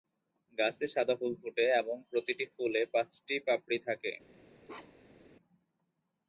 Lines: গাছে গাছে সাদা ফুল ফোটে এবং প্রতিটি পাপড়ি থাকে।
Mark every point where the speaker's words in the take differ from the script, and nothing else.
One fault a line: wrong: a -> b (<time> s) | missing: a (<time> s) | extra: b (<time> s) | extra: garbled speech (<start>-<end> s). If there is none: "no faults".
missing: গাছে (0.8 s)
extra: ফুলে পাঁচটি (2.5 s)